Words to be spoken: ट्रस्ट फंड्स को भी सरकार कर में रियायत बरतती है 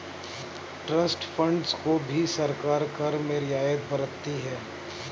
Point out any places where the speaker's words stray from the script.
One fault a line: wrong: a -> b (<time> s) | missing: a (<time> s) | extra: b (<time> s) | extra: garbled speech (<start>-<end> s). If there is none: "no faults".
no faults